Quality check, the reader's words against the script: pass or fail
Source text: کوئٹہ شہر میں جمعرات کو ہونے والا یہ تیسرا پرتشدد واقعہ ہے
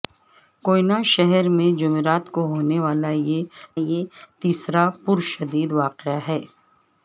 fail